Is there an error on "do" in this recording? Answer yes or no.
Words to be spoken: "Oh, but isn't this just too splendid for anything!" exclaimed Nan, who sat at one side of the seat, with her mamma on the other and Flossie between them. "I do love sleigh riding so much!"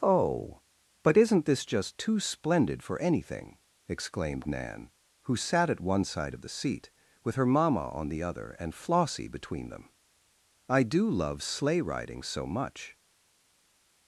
no